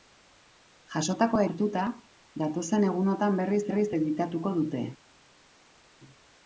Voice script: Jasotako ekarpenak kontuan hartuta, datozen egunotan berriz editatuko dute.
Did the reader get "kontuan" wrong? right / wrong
wrong